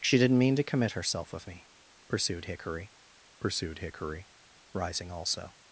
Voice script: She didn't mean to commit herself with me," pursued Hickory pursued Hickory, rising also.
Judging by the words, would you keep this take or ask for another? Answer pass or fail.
pass